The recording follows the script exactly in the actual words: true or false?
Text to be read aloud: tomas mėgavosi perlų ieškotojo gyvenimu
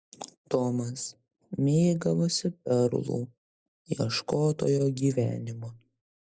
true